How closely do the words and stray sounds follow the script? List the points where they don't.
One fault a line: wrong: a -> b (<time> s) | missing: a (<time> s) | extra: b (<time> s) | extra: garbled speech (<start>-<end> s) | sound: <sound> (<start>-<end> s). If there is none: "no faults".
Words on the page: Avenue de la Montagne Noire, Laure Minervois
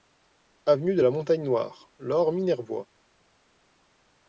no faults